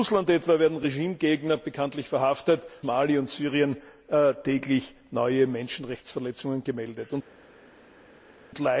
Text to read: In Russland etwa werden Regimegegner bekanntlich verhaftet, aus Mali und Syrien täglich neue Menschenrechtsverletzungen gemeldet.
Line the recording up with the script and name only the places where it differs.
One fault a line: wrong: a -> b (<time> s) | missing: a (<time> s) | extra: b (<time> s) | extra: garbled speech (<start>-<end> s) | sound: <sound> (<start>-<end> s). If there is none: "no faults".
missing: aus (2.6 s)